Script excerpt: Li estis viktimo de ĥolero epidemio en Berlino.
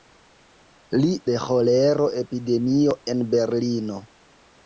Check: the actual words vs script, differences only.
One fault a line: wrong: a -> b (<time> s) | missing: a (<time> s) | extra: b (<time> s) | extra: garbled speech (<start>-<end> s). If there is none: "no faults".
missing: estis viktimo (1.1 s)